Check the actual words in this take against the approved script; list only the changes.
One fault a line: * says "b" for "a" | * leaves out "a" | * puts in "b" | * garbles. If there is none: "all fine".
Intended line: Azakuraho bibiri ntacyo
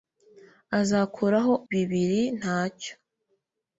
all fine